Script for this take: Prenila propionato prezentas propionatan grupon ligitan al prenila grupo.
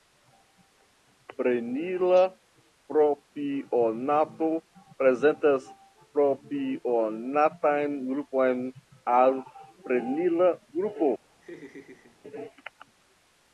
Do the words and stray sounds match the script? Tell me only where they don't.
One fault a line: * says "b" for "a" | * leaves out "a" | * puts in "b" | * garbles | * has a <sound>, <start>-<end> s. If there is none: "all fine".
* leaves out "ligitan"
* has a laugh, 11.4-12.2 s